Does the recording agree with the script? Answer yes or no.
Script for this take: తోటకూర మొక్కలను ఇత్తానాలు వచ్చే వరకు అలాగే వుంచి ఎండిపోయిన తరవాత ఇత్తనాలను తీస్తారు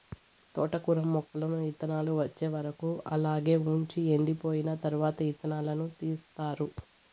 yes